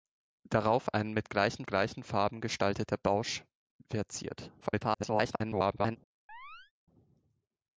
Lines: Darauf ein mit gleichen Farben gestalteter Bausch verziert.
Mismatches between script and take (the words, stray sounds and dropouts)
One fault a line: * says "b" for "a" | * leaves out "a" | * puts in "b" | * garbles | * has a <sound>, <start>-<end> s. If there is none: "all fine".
* puts in "gleichen"
* garbles
* has a chirp, 6.3-6.7 s